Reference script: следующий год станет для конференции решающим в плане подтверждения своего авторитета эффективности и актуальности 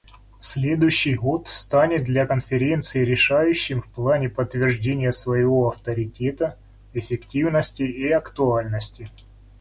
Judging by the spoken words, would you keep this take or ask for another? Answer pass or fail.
pass